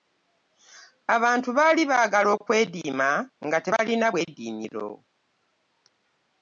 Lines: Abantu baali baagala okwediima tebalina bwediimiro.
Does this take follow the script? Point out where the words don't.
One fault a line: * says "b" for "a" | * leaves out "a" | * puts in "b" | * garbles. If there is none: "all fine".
* puts in "nga"